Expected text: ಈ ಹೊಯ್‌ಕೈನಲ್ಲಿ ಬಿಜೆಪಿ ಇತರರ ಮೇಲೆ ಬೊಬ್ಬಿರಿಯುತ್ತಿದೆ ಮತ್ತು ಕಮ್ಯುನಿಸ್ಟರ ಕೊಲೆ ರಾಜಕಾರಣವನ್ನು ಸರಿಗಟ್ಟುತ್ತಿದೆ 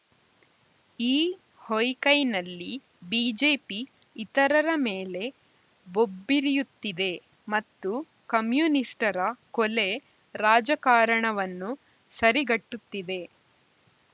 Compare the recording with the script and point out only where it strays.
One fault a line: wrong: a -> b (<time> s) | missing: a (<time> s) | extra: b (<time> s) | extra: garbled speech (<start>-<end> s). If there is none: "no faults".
no faults